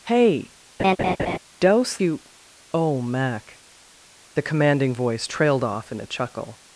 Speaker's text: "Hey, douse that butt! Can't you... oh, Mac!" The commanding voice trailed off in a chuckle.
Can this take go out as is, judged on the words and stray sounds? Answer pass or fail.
fail